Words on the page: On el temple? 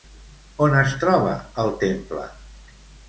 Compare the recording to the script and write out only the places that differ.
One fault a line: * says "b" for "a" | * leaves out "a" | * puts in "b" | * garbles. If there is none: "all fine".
* puts in "es troba"